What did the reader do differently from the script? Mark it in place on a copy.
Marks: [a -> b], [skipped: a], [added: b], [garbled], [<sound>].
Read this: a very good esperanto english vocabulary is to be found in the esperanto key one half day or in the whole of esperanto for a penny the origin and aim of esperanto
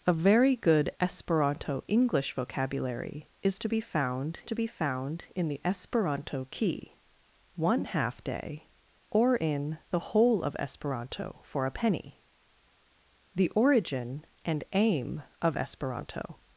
a very good esperanto english vocabulary is to be found [added: to be found] in the esperanto key one half day or in the whole of esperanto for a penny the origin and aim of esperanto